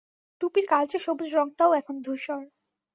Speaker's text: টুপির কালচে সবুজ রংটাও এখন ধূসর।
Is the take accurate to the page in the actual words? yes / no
yes